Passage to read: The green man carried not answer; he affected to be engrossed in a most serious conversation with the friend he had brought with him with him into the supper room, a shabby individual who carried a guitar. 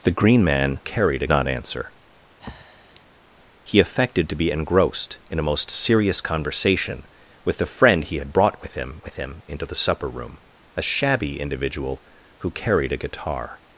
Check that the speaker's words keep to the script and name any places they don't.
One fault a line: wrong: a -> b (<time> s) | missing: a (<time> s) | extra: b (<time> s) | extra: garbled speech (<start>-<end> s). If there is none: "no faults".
no faults